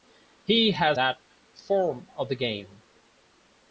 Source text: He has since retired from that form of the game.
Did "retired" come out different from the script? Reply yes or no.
yes